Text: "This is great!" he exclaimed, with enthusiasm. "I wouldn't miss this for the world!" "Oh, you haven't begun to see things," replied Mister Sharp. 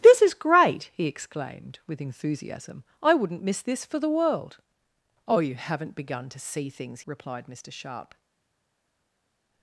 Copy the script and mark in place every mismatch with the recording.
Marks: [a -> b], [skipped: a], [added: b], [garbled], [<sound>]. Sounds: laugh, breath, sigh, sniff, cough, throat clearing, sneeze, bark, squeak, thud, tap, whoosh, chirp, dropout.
"This is great!" he exclaimed, with enthusiasm. "I wouldn't miss this for the world!" "Oh, you haven't begun to see things," replied Mister Sharp.